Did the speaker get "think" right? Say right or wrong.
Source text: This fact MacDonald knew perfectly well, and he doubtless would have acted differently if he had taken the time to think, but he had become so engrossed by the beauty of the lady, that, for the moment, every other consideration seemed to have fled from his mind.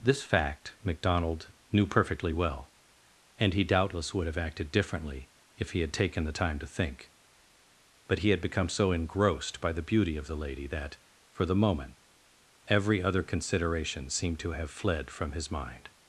right